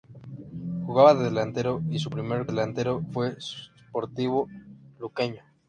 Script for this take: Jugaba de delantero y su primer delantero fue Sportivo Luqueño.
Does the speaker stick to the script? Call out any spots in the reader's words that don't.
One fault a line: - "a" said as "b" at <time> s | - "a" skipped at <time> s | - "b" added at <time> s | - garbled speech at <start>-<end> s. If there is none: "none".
none